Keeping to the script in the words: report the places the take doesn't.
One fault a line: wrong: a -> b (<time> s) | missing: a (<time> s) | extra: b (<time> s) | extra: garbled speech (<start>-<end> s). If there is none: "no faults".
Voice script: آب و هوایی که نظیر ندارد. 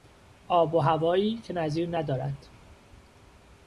no faults